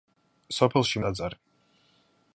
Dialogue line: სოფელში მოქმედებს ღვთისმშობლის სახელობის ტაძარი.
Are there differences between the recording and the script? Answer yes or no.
yes